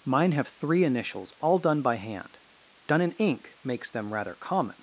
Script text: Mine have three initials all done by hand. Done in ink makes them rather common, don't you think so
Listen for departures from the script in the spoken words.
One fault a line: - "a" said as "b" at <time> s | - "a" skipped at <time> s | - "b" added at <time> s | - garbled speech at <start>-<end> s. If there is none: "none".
- "don't you think so" skipped at 4.8 s